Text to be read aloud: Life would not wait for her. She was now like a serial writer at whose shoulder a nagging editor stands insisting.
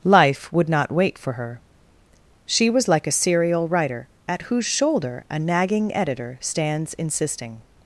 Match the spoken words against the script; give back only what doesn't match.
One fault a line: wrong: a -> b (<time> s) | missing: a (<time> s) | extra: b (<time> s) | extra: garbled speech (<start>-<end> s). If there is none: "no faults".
missing: now (2.9 s)